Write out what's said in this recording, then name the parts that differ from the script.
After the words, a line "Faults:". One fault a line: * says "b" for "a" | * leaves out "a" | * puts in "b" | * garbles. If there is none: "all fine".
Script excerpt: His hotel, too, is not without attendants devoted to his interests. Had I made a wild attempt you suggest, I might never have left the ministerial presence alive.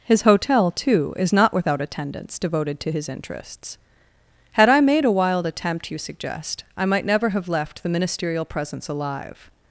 His hotel, too, is not without attendants devoted to his interests. Had I made a wild attempt you suggest, I might never have left the ministerial presence alive.
Faults:
all fine